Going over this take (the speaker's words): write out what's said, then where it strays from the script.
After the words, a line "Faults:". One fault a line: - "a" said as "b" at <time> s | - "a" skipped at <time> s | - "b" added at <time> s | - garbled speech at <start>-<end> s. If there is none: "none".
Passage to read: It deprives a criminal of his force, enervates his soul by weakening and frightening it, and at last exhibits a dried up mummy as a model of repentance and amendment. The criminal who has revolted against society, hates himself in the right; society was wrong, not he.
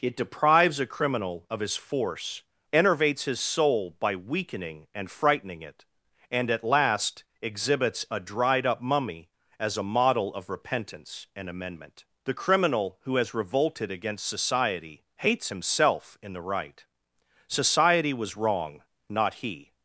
It deprives a criminal of his force, enervates his soul by weakening and frightening it, and at last exhibits a dried up mummy as a model of repentance and amendment. The criminal who has revolted against society, hates himself in the right; society was wrong, not he.
Faults:
none